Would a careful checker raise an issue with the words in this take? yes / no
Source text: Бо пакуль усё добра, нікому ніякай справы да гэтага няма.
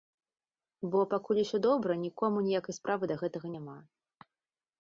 no